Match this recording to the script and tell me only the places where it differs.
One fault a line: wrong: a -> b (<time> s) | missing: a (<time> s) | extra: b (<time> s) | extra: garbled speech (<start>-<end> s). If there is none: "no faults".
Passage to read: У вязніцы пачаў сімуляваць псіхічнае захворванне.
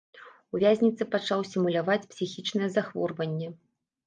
no faults